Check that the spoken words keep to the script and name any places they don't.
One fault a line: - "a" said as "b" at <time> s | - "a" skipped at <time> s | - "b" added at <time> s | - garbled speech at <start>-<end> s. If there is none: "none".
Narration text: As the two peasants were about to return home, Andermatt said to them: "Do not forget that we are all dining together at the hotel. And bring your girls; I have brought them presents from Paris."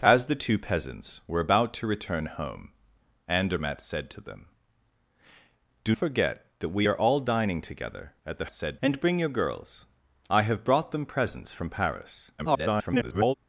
- "not" skipped at 6.0 s
- "hotel" said as "said" at 8.5 s
- garbled speech at 12.4-13.3 s